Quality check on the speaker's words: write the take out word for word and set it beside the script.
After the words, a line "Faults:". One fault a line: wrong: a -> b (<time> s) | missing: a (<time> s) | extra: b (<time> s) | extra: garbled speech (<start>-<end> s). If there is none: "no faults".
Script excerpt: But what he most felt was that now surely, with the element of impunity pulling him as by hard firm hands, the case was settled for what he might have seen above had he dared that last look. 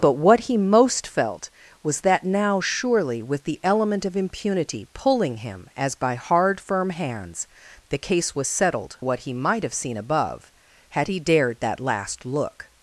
But what he most felt was that now surely, with the element of impunity pulling him as by hard firm hands, the case was settled what he might have seen above had he dared that last look.
Faults:
missing: for (9.0 s)